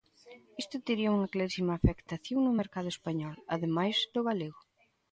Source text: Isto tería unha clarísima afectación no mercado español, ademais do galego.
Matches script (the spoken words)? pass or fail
pass